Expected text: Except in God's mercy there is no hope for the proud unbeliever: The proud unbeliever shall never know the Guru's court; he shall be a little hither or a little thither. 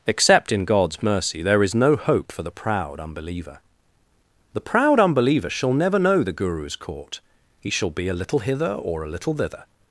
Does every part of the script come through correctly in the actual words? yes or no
yes